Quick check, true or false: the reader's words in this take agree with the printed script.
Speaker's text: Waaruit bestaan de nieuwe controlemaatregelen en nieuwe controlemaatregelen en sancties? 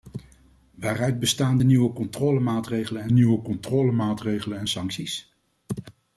true